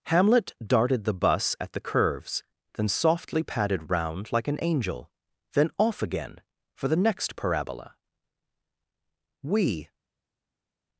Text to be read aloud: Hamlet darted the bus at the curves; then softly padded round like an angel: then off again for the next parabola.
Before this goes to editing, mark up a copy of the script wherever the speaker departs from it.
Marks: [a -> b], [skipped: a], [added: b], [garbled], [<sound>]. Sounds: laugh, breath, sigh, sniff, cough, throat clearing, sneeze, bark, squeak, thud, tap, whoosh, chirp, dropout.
Hamlet darted the bus at the curves; then softly padded round like an angel: then off again for the next parabola. [added: We]